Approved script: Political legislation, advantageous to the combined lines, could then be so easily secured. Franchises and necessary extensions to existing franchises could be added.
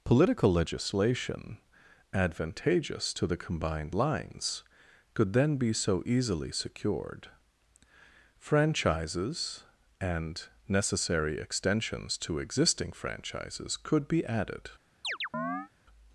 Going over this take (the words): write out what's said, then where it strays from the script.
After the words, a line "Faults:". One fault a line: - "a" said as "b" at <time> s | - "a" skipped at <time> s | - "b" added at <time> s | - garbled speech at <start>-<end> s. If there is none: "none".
Political legislation, advantageous to the combined lines, could then be so easily secured. Franchises and necessary extensions to existing franchises could be added.
Faults:
none